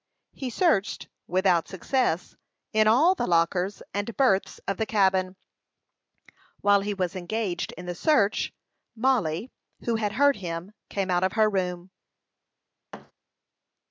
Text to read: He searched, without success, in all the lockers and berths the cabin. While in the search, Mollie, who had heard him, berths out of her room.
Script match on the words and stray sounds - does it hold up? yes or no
no